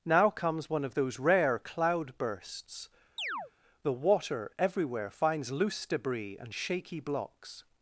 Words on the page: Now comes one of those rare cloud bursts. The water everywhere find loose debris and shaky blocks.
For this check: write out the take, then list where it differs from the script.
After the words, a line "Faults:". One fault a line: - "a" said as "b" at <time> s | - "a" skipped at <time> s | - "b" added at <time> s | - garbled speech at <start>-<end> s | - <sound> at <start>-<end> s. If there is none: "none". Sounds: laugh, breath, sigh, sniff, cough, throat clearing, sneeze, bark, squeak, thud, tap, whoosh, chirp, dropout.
Now comes one of those rare cloud bursts. The water everywhere finds loose debris and shaky blocks.
Faults:
- chirp at 3.2-3.5 s
- "find" said as "finds" at 5.1 s